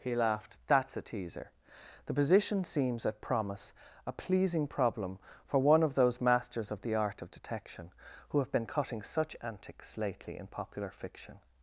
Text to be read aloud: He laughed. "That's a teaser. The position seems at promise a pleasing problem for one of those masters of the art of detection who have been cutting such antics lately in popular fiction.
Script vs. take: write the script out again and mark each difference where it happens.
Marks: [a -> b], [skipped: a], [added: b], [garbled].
He laughed. "That's a teaser. The position seems at promise a pleasing problem for one of those masters of the art of detection who have been cutting such antics lately in popular fiction.